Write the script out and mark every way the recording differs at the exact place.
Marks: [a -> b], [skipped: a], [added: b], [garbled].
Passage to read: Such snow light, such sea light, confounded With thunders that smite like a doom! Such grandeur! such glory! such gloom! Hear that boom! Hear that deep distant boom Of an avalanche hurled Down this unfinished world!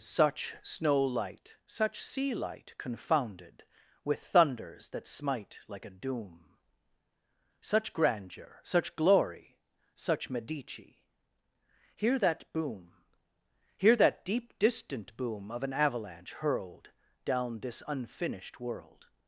Such snow light, such sea light, confounded With thunders that smite like a doom! Such grandeur! such glory! such [gloom! -> medici] Hear that boom! Hear that deep distant boom Of an avalanche hurled Down this unfinished world!